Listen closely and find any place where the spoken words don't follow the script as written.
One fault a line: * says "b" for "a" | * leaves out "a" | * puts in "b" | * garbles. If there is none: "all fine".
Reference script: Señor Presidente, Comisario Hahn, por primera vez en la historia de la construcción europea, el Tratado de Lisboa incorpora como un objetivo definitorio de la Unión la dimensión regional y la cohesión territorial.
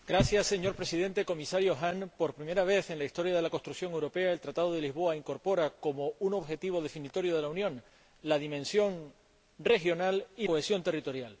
* leaves out "la"